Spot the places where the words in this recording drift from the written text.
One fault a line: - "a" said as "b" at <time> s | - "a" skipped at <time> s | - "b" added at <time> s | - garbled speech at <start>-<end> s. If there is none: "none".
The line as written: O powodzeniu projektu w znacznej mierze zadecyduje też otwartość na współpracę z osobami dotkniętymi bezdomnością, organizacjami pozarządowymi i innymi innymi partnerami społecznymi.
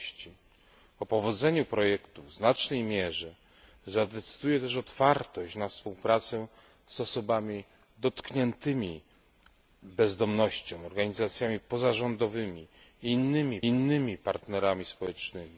none